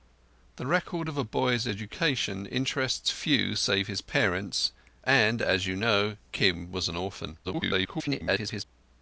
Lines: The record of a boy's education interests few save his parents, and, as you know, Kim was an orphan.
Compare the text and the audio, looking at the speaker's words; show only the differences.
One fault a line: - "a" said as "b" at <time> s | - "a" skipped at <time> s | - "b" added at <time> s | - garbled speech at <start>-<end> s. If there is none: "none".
- garbled speech at 7.4-8.6 s